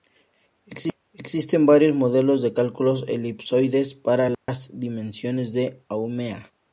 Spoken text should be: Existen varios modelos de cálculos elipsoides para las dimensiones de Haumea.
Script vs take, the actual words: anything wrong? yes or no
no